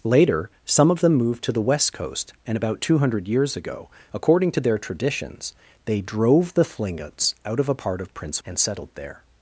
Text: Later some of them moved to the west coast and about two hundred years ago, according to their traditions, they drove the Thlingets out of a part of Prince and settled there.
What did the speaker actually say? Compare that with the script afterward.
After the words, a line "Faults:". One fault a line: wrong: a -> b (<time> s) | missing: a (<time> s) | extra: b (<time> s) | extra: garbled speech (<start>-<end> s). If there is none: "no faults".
Later some of them moved to the west coast and about two hundred years ago, according to their traditions, they drove the Thlingets out of a part of Prince and settled there.
Faults:
no faults